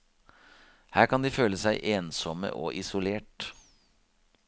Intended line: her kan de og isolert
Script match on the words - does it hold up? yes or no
no